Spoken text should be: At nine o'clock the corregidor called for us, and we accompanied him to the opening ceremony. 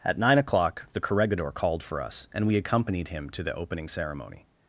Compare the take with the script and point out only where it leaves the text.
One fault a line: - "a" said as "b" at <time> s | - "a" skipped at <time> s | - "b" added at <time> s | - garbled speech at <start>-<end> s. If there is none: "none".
none